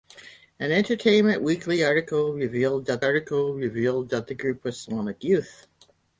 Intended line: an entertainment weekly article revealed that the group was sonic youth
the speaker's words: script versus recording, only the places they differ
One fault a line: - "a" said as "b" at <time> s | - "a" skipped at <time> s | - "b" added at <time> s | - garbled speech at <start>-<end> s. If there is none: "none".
- "article revealed that" added at 3.0 s